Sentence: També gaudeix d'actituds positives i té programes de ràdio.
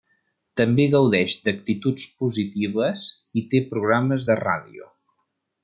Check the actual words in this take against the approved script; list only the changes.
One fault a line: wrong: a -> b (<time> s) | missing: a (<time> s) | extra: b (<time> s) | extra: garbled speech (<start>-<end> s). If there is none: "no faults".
no faults